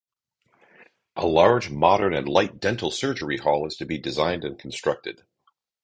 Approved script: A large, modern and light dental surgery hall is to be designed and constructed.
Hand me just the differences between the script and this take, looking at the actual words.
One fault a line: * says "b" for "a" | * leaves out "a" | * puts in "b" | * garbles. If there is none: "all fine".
all fine